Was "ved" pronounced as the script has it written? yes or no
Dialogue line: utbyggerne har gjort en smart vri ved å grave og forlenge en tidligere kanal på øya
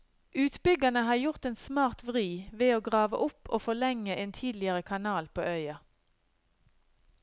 yes